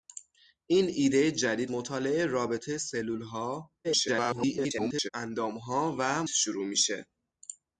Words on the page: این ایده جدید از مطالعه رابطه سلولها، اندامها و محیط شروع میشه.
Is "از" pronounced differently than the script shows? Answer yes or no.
yes